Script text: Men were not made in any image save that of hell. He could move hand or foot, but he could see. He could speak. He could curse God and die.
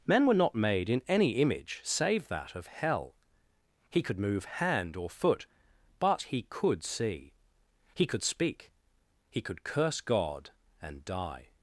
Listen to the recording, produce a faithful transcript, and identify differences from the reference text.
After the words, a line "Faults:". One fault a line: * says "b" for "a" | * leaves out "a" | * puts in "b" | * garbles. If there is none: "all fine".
Men were not made in any image save that of hell. He could move hand or foot, but he could see. He could speak. He could curse God and die.
Faults:
all fine